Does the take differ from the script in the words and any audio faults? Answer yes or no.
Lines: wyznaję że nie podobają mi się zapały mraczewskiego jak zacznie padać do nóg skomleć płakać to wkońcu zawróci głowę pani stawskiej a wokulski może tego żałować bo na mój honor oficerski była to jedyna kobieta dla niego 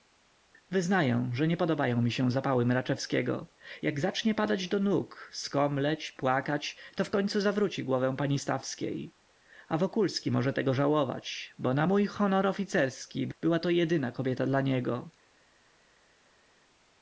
no